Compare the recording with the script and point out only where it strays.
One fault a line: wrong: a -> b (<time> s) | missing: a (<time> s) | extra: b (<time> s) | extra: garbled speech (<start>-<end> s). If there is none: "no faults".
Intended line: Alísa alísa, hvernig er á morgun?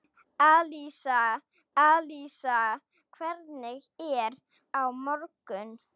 no faults